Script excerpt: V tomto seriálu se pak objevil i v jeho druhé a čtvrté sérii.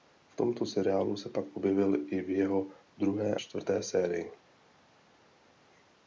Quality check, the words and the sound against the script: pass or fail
fail